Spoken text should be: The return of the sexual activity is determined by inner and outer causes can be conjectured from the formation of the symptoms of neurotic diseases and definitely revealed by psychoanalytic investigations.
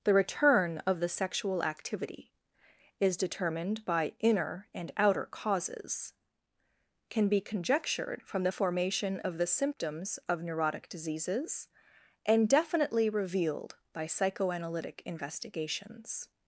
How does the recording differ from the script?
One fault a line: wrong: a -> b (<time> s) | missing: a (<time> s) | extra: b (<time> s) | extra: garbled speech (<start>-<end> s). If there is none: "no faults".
no faults